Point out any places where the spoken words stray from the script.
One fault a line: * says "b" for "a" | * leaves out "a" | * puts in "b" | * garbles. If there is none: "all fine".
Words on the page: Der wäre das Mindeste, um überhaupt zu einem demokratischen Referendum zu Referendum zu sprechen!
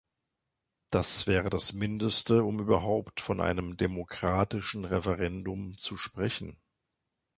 * says "Das" for "Der"
* says "von" for "zu"
* leaves out "Referendum zu"